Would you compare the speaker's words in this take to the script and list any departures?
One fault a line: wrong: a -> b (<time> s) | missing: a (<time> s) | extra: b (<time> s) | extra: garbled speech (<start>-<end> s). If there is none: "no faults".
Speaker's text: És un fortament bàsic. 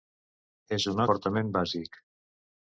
no faults